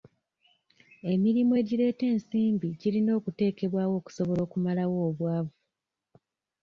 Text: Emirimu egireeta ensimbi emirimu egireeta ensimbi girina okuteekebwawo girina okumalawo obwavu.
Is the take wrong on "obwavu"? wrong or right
right